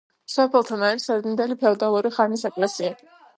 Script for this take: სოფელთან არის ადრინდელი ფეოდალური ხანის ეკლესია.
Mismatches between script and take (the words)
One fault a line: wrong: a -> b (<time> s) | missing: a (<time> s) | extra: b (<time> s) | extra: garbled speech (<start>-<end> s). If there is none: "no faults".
no faults